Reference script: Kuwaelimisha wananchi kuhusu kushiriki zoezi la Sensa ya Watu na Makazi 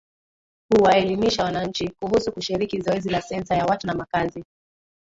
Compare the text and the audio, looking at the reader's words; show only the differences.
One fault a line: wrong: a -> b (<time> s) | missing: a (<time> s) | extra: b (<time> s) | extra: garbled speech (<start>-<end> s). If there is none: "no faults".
no faults